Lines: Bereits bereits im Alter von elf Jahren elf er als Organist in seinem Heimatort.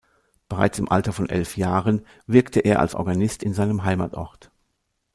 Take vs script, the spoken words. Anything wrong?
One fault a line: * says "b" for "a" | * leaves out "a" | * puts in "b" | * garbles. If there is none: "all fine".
* leaves out "bereits"
* says "wirkte" for "elf"